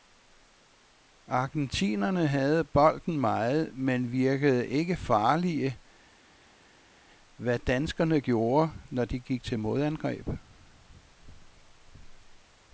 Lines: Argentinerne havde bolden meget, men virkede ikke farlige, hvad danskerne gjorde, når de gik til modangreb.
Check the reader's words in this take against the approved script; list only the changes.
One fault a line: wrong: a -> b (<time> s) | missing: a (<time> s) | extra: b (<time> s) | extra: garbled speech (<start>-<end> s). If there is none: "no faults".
no faults